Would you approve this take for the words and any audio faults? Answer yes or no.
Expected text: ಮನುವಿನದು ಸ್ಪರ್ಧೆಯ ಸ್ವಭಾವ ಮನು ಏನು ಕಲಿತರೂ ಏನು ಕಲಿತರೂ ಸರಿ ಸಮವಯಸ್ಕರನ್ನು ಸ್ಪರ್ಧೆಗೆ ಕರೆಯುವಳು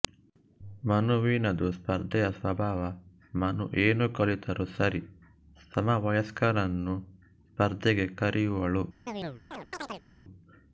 no